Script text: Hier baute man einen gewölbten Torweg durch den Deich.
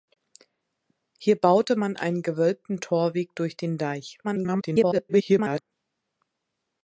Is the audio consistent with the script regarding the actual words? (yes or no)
no